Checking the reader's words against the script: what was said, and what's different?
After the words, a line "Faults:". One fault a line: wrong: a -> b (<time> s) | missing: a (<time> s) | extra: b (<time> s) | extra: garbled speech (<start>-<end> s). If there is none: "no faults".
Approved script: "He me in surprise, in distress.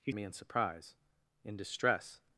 "He me in surprise, in distress.
Faults:
no faults